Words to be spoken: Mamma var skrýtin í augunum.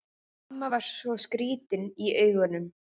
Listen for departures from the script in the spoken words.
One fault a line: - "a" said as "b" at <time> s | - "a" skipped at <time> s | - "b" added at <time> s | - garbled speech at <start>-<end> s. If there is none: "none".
- "svo" added at 0.9 s